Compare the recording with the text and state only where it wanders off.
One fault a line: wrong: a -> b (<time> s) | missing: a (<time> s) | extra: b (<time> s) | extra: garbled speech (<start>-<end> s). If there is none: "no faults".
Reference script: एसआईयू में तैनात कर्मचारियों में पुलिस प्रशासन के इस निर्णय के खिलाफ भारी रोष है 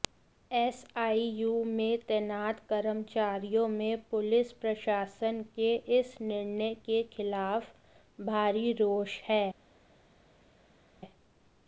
no faults